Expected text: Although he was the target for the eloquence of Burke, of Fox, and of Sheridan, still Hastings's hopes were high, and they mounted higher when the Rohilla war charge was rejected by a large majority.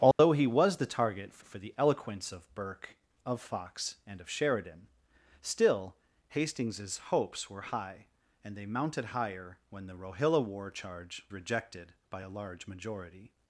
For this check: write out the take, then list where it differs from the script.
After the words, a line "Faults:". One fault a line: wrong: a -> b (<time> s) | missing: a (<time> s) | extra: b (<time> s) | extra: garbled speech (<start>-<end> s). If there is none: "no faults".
Although he was the target for for the eloquence of Burke, of Fox, and of Sheridan, still Hastings's hopes were high, and they mounted higher when the Rohilla war charge rejected by a large majority.
Faults:
extra: for (1.4 s)
missing: was (11.2 s)